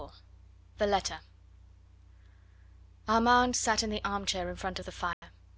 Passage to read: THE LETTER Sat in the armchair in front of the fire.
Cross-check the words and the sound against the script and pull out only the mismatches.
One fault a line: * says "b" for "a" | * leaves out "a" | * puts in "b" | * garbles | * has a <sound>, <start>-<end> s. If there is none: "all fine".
* puts in "Armand"
* has a dropout, 5.1-5.2 s